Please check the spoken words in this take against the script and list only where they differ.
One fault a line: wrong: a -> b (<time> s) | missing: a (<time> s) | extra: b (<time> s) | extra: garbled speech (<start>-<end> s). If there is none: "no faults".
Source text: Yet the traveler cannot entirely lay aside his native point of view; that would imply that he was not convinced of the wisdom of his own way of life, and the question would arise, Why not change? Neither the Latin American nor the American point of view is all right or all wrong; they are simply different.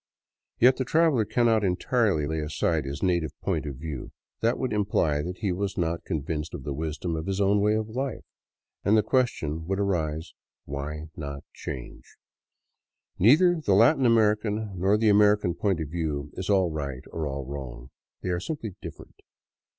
no faults